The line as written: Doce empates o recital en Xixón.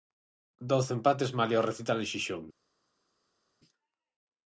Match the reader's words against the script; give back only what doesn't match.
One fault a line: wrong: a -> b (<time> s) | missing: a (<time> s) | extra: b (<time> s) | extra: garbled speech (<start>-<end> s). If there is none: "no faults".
extra: malia (1.4 s)